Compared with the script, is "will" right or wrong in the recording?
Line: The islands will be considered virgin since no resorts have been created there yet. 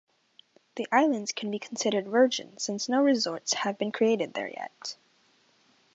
wrong